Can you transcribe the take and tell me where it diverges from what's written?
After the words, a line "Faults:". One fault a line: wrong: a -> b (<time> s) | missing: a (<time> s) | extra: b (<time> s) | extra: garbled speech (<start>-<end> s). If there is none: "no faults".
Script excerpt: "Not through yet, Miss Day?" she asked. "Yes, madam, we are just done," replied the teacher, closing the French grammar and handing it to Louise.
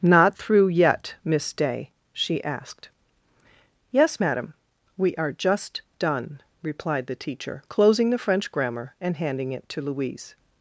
"Not through yet, Miss Day?" she asked. "Yes, madam, we are just done," replied the teacher, closing the French grammar and handing it to Louise.
Faults:
no faults